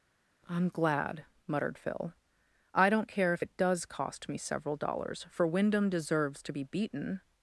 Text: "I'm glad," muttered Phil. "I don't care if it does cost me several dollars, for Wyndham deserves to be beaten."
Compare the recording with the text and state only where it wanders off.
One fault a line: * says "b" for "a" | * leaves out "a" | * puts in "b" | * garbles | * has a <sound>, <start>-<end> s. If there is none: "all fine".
all fine